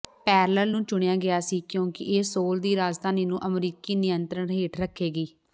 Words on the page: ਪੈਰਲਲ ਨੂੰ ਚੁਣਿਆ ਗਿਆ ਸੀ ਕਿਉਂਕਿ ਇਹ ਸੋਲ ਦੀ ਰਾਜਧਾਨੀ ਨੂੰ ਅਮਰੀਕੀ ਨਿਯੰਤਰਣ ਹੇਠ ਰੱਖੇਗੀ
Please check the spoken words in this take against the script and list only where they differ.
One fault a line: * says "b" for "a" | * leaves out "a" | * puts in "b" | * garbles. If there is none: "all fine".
all fine